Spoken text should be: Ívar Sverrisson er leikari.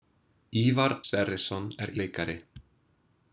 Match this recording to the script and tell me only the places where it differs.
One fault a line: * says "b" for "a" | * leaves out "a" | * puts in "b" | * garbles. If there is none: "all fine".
all fine